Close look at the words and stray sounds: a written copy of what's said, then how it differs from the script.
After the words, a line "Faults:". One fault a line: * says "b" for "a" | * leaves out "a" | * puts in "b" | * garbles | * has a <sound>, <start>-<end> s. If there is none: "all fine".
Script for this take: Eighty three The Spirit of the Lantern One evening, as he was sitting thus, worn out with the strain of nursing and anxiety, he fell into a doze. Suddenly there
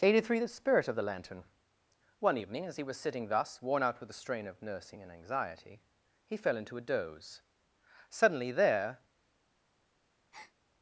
Eighty three The Spirit of the Lantern One evening, as he was sitting thus, worn out with the strain of nursing and anxiety, he fell into a doze. Suddenly there
Faults:
* has a breath, 10.3-10.5 s